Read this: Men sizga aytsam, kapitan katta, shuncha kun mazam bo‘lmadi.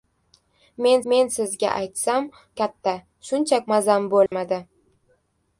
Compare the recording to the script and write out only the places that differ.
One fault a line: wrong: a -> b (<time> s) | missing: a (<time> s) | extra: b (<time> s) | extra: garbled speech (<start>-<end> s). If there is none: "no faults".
extra: men (1.1 s)
missing: kapitan (2.3 s)
missing: kun (3.6 s)